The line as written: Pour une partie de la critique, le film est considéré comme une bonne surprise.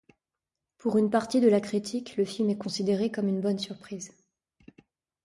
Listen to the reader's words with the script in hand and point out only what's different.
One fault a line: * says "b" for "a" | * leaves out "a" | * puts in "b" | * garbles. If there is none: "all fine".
all fine